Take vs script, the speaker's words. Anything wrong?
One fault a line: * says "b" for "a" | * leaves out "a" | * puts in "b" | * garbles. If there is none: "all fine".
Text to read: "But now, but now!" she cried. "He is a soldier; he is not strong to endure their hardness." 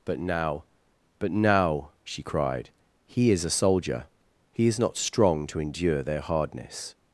all fine